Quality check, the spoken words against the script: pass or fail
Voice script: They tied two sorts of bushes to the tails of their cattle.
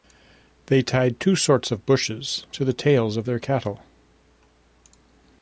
pass